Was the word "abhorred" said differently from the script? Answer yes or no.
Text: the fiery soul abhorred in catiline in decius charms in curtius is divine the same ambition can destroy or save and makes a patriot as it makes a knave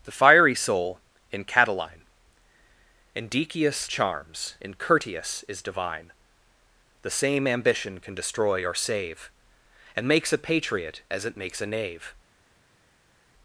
yes